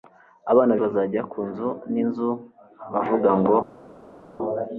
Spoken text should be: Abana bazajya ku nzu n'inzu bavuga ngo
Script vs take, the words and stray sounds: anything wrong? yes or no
no